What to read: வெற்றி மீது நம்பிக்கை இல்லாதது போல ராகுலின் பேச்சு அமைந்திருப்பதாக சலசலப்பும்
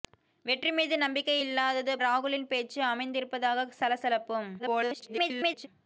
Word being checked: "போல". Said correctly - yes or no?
no